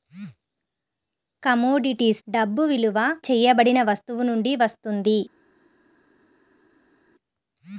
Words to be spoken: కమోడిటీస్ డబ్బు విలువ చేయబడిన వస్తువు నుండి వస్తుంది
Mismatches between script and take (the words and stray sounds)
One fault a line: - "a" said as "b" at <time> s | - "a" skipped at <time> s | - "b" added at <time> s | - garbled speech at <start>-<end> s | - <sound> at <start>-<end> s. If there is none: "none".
none